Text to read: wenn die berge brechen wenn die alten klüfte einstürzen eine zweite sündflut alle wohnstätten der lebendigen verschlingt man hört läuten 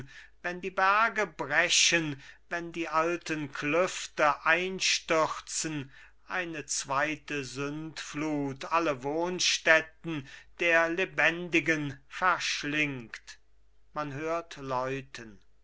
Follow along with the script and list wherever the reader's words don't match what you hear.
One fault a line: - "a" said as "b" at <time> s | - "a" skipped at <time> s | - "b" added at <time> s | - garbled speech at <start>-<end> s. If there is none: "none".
none